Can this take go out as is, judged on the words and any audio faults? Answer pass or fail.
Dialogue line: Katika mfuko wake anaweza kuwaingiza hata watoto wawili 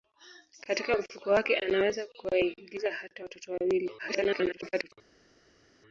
fail